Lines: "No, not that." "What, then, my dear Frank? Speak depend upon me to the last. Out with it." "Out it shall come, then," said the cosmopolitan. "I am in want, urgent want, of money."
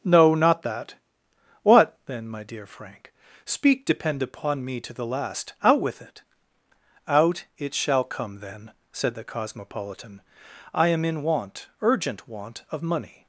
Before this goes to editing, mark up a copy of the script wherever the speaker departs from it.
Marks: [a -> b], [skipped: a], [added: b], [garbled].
"No, not that." "What, then, my dear Frank? Speak depend upon me to the last. Out with it." "Out it shall come, then," said the cosmopolitan. "I am in want, urgent want, of money."